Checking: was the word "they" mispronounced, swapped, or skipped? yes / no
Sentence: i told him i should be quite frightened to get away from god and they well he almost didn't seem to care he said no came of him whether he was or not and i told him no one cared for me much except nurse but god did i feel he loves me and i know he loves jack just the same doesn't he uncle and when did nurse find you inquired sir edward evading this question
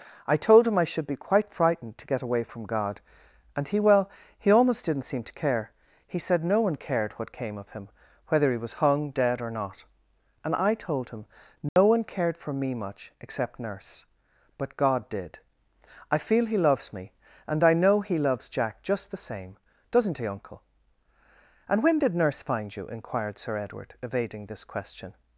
yes